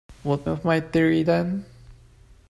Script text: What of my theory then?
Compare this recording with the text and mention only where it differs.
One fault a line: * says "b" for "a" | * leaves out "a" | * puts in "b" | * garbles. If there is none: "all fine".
all fine